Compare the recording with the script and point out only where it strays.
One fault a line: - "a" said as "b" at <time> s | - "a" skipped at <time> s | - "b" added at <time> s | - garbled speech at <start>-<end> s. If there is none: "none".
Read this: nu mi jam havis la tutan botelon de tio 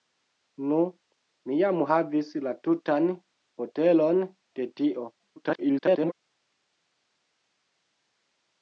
- garbled speech at 5.1-6.1 s